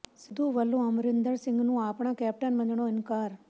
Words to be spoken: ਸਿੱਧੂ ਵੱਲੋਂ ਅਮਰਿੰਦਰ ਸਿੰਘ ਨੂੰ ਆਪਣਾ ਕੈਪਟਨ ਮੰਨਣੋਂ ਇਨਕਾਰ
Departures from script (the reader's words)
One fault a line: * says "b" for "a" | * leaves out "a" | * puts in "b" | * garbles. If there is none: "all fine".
all fine